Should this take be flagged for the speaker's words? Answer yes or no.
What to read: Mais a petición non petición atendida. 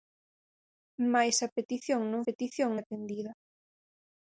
no